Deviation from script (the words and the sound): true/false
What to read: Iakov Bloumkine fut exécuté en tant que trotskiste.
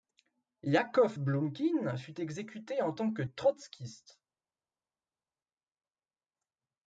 false